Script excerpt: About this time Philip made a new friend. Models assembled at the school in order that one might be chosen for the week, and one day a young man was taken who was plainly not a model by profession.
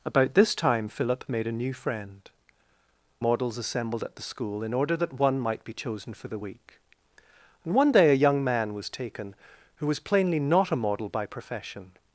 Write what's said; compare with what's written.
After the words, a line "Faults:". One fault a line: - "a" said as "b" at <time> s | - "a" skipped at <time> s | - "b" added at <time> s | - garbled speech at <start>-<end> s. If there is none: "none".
About this time Philip made a new friend. Models assembled at the school in order that one might be chosen for the week, and one day a young man was taken who was plainly not a model by profession.
Faults:
none